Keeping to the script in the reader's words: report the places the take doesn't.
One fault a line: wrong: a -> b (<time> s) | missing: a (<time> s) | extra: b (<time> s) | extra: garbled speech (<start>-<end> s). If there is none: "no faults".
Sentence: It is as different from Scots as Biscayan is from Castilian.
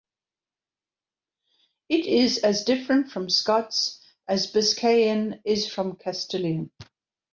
no faults